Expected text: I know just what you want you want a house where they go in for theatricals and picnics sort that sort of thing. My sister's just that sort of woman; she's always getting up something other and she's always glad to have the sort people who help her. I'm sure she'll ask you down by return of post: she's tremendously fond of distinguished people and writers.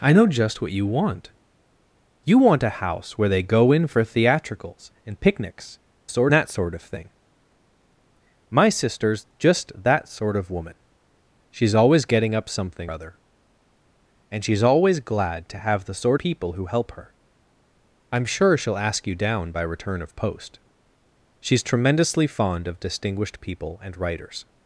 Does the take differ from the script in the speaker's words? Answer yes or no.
no